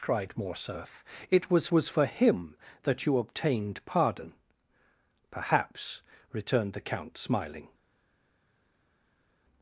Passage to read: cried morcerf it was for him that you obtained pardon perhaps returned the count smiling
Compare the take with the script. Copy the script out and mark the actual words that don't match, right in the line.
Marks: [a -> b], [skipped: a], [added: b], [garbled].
cried morcerf it was [added: was] for him that you obtained pardon perhaps returned the count smiling